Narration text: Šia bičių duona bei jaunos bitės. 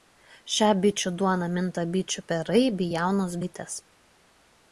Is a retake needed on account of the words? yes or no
yes